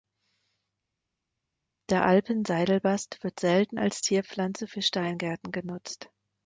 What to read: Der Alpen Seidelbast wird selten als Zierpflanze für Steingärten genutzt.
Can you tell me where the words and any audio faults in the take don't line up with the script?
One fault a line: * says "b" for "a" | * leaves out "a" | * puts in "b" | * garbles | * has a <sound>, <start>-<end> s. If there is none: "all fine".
all fine